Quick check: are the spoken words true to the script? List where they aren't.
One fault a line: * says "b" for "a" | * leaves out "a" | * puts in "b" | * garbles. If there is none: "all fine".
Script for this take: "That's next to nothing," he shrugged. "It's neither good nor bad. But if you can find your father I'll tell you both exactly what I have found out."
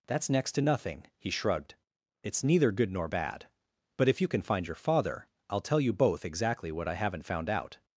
* says "haven't" for "have"